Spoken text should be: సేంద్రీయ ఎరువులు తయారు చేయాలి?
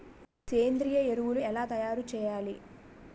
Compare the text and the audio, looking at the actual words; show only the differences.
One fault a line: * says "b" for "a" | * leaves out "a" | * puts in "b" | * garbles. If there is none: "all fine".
* puts in "ఎలా"